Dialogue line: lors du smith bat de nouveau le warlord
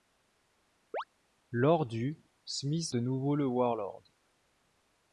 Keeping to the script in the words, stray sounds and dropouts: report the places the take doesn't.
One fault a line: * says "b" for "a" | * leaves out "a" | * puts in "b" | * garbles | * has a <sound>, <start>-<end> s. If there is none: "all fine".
* has a chirp, 0.9-1.0 s
* leaves out "bat"